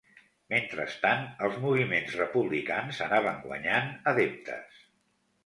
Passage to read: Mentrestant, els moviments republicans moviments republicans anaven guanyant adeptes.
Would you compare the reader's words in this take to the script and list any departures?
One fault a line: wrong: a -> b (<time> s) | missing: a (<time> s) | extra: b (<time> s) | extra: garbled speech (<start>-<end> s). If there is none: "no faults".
missing: moviments republicans (3.0 s)